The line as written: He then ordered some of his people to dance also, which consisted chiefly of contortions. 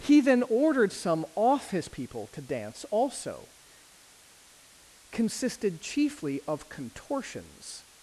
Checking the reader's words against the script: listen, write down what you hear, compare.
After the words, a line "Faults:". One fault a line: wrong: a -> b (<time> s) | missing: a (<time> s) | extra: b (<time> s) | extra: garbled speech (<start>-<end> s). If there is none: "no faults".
He then ordered some off his people to dance also, consisted chiefly of contortions.
Faults:
wrong: of -> off (1.3 s)
missing: which (3.5 s)